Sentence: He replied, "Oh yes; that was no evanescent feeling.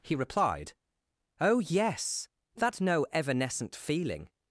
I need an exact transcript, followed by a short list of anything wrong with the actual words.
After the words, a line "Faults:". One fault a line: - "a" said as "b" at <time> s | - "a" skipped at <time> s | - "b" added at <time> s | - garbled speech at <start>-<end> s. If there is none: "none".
He replied, "Oh yes; that no evanescent feeling.
Faults:
- "was" skipped at 2.8 s